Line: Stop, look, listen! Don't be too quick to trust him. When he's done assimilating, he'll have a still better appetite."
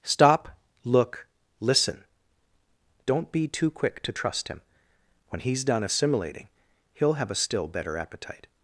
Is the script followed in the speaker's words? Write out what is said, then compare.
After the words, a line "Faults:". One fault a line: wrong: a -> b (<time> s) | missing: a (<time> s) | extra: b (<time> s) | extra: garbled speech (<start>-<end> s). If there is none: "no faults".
Stop, look, listen! Don't be too quick to trust him. When he's done assimilating, he'll have a still better appetite."
Faults:
no faults